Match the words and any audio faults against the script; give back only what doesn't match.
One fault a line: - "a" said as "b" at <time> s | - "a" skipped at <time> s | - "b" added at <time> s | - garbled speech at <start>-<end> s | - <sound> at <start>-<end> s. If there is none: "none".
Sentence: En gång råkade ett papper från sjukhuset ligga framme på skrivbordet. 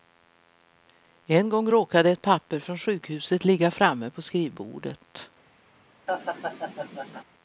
- laugh at 6.1-7.2 s